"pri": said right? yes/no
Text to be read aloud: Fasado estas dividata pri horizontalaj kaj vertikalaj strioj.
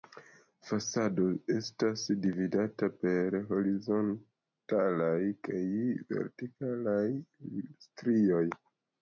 no